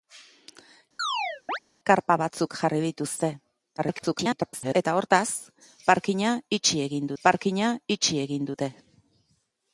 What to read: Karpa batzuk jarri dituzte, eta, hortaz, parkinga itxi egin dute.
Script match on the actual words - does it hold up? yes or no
no